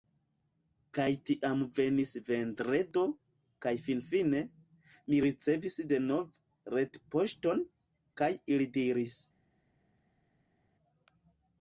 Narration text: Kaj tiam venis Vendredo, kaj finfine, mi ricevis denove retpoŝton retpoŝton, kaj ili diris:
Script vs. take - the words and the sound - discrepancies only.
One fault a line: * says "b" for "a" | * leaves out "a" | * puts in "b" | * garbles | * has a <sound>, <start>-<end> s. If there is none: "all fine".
* leaves out "retpoŝton"